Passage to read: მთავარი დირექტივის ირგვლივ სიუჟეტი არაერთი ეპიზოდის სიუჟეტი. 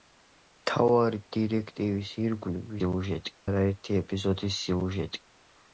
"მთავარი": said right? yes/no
yes